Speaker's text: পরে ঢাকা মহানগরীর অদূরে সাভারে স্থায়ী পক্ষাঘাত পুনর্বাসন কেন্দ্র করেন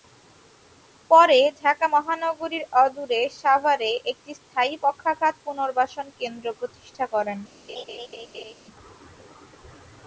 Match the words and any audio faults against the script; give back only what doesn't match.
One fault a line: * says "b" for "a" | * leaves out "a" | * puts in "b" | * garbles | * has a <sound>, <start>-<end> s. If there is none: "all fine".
* puts in "একটি"
* puts in "প্রতিষ্ঠা"
* has a laugh, 7.7-8.5 s